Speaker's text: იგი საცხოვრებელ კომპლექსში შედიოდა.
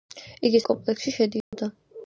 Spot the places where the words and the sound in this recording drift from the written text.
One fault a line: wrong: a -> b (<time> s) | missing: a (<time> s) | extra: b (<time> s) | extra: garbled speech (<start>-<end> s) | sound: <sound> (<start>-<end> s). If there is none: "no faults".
missing: საცხოვრებელ (0.6 s)
sound: dropout (1.4-1.5 s)